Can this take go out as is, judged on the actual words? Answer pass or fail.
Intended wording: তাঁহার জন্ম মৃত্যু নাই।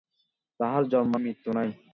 pass